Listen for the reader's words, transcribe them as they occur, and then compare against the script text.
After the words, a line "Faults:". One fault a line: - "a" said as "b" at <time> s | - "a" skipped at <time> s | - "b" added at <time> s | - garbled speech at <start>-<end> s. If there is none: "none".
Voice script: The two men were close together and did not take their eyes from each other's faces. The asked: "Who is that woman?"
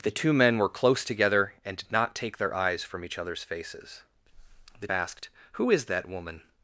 The two men were close together and did not take their eyes from each other's faces. The asked: "Who is that woman?"
Faults:
none